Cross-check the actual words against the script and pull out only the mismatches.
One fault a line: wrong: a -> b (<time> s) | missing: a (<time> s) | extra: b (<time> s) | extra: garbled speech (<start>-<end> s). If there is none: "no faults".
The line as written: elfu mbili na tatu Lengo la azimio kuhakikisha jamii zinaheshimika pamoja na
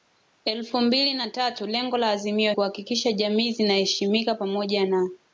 no faults